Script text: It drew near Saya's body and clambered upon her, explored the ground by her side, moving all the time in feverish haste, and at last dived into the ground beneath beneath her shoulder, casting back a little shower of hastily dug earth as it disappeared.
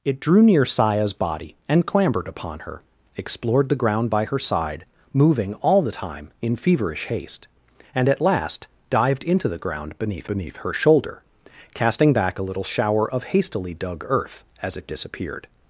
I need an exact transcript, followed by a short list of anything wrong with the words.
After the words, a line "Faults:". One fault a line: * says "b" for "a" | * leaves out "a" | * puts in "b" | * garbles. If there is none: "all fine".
It drew near Saya's body and clambered upon her, explored the ground by her side, moving all the time in feverish haste, and at last dived into the ground beneath beneath her shoulder, casting back a little shower of hastily dug earth as it disappeared.
Faults:
all fine